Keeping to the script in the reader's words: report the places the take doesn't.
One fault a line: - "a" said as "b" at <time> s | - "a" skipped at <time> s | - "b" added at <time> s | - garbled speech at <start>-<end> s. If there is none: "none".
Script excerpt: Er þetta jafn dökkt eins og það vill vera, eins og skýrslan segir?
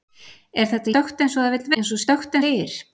- "jafn" skipped at 0.9 s
- "vera" skipped at 1.7 s
- "skýrslan" said as "dökkt" at 2.1 s